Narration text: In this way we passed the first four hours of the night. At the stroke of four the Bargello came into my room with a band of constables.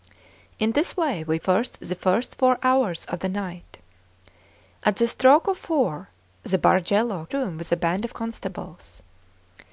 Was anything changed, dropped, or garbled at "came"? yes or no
yes